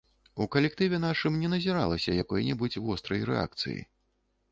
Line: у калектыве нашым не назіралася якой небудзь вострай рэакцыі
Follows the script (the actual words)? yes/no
yes